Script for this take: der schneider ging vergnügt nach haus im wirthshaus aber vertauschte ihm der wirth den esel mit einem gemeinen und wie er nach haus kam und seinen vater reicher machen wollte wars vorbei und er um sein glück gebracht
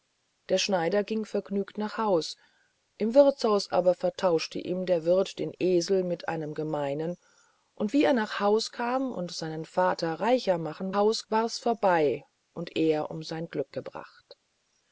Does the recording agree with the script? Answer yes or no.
no